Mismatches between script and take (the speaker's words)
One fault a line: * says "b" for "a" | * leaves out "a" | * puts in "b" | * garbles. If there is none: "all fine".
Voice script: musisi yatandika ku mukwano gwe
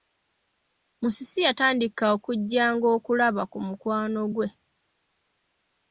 * puts in "okujjanga okulaba"